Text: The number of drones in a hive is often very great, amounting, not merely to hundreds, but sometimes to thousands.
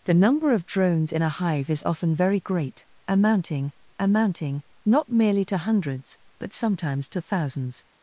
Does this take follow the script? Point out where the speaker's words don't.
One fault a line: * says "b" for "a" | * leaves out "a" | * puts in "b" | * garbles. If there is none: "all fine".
* puts in "amounting"